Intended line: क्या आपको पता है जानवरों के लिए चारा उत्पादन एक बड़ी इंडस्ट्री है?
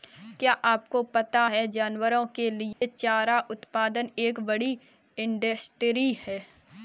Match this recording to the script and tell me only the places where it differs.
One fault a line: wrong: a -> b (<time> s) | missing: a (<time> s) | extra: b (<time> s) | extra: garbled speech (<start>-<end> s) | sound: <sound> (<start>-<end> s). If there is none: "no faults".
sound: dropout (2.7-2.8 s)